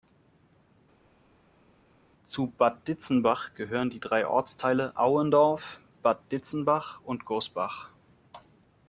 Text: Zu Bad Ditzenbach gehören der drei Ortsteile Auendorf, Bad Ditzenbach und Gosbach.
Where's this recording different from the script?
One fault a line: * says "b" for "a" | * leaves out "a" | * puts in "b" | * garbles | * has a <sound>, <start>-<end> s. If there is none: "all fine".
* says "die" for "der"